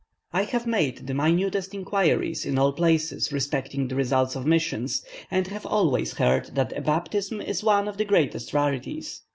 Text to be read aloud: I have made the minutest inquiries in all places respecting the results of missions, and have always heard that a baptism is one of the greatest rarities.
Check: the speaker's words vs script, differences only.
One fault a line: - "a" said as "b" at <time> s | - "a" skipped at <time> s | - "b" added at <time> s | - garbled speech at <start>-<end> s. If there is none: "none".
none